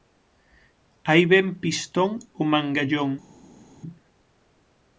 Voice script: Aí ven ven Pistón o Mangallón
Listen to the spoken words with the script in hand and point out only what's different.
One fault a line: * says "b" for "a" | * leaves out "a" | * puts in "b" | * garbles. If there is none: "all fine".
* leaves out "ven"